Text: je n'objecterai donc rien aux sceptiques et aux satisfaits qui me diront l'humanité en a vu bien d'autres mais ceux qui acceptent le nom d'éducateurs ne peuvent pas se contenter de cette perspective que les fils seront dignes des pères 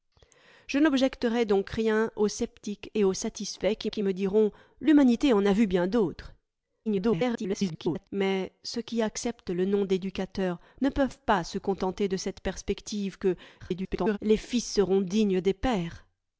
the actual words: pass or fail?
fail